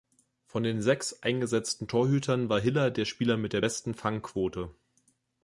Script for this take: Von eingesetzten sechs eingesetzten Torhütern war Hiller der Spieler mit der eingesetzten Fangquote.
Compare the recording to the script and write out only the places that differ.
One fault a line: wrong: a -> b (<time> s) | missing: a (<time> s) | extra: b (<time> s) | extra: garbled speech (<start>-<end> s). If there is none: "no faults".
wrong: eingesetzten -> den (0.6 s)
wrong: eingesetzten -> besten (3.6 s)